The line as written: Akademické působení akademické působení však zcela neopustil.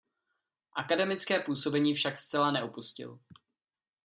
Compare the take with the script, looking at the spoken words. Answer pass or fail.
fail